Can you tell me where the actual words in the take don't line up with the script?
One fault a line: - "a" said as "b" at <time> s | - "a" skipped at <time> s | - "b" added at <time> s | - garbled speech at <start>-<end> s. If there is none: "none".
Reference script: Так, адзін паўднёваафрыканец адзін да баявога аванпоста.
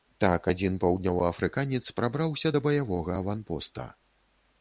- "адзін" said as "прабраўся" at 2.0 s